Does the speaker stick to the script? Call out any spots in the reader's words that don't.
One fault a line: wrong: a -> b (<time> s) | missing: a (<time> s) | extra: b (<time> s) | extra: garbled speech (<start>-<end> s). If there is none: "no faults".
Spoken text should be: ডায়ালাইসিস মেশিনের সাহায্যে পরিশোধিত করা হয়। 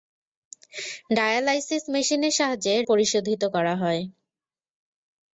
no faults